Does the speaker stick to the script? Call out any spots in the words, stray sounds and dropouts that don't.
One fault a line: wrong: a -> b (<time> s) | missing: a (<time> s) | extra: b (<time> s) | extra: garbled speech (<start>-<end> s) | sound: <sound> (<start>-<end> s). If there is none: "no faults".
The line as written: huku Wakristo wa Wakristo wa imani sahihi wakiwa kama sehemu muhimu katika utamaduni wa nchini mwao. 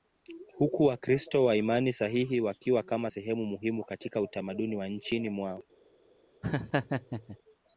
missing: Wakristo wa (1.6 s)
sound: laugh (6.4-7.4 s)